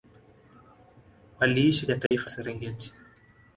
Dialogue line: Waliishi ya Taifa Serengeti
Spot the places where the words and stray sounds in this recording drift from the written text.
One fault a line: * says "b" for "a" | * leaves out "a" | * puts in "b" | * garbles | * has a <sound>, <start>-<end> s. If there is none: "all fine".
* has a dropout, 2.1-2.1 s